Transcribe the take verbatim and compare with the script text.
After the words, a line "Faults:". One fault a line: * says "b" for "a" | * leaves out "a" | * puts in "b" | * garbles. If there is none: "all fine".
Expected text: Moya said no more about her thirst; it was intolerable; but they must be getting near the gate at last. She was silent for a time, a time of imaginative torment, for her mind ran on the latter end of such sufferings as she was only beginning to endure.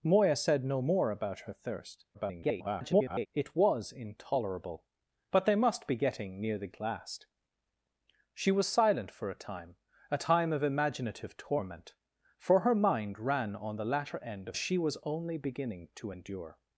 Moya said no more about her thirst; [garbled] it was intolerable; but they must be getting near the at last. She was silent for a time, a time of imaginative torment, for her mind ran on the latter end of she was only beginning to endure.
Faults:
* garbles
* leaves out "gate"
* leaves out "such sufferings as"